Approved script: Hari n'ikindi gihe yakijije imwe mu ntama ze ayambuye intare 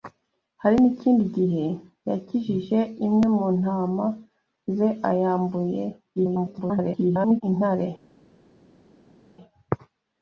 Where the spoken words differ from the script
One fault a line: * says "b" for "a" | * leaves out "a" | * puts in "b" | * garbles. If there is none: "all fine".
* garbles